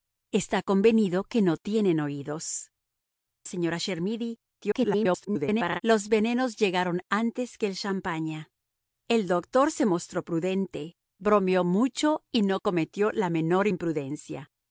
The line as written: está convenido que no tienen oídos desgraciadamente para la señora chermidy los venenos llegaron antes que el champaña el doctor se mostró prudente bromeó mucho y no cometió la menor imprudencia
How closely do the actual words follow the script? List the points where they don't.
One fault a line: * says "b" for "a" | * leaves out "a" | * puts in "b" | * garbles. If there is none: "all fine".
* leaves out "desgraciadamente para la"
* garbles